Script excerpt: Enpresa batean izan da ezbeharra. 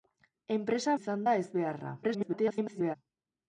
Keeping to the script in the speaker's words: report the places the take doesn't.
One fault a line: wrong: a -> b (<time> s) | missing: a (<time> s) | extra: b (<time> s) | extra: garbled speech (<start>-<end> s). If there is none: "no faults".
missing: batean (0.9 s)
extra: garbled speech (2.0-3.0 s)